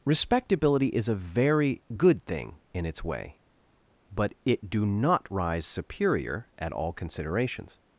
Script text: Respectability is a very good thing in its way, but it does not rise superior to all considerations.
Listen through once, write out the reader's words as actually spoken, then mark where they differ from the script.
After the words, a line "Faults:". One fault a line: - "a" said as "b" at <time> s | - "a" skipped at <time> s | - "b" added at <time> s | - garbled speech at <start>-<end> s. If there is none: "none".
Respectability is a very good thing in its way, but it do not rise superior at all considerations.
Faults:
- "does" said as "do" at 4.7 s
- "to" said as "at" at 6.6 s